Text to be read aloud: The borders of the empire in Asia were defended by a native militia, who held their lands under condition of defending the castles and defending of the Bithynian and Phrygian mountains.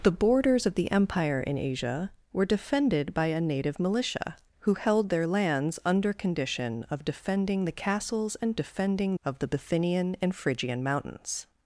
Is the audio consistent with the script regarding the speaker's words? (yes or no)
yes